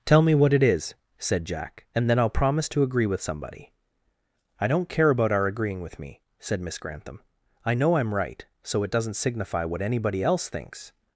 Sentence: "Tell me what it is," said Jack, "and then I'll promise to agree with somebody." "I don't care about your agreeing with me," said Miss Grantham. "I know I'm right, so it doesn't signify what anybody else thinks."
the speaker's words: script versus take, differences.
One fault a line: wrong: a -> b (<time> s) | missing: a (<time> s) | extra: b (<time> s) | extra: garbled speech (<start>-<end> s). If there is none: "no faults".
wrong: your -> our (5.3 s)